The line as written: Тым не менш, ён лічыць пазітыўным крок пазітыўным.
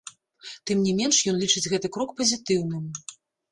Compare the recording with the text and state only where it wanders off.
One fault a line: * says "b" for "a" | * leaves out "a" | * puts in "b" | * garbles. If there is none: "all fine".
* says "гэты" for "пазітыўным"